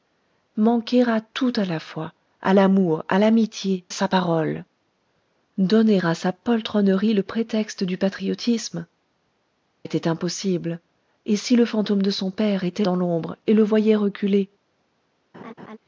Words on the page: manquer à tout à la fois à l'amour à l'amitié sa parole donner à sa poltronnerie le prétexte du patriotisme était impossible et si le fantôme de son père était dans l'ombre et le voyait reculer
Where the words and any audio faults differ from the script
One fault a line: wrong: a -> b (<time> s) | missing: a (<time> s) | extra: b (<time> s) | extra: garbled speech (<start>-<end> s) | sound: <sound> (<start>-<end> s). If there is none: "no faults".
sound: laugh (15.3-15.8 s)